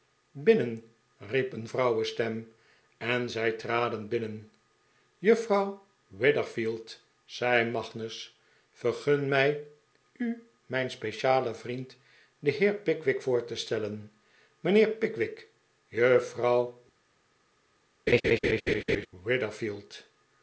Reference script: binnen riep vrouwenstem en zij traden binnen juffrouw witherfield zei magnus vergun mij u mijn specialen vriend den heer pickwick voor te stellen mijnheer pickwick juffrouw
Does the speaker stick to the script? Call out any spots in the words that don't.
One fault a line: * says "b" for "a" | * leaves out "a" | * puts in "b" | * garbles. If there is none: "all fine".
* puts in "een"